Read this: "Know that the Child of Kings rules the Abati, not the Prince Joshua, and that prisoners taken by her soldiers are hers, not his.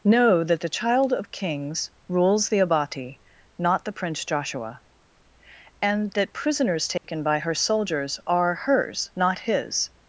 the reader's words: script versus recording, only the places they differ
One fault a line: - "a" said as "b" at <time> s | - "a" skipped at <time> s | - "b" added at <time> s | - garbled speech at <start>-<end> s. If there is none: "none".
none